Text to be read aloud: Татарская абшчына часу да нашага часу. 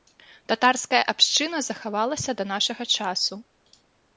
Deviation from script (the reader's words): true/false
true